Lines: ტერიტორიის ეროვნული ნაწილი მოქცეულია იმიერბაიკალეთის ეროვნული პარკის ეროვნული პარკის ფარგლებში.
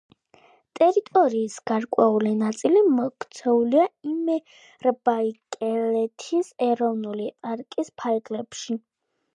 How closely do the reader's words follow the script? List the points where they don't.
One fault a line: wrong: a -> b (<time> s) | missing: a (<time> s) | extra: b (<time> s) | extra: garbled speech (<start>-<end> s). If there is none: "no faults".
wrong: ეროვნული -> გარკვეული (1.7 s)
missing: ეროვნული პარკის (8.0 s)